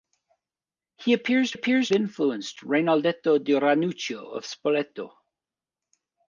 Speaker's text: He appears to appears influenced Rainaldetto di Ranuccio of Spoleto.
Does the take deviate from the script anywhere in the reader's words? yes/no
no